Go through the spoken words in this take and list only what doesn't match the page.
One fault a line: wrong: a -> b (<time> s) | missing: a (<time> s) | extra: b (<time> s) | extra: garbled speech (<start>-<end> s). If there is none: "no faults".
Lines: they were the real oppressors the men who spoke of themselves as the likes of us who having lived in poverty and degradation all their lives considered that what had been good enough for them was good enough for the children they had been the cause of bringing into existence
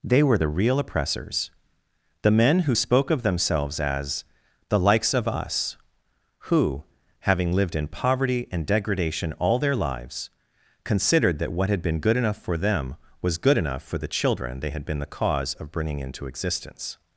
no faults